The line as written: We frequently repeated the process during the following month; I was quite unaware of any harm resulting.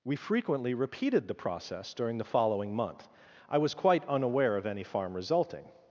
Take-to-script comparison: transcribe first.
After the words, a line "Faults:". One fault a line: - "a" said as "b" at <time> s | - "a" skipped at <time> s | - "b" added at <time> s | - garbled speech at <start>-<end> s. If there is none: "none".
We frequently repeated the process during the following month; I was quite unaware of any farm resulting.
Faults:
- "harm" said as "farm" at 4.8 s